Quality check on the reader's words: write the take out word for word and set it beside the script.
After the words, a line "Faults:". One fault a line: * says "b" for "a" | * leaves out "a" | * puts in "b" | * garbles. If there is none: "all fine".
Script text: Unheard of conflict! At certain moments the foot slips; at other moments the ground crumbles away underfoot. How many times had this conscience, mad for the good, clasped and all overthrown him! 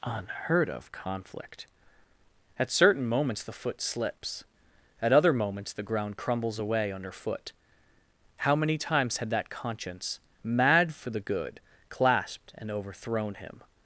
Unheard of conflict! At certain moments the foot slips; at other moments the ground crumbles away underfoot. How many times had that conscience, mad for the good, clasped and overthrown him!
Faults:
* says "that" for "this"
* leaves out "all"